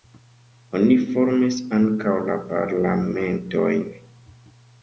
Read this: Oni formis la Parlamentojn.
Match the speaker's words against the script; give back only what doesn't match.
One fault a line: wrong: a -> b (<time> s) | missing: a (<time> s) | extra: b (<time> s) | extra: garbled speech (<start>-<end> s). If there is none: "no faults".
extra: ankaŭ (1.8 s)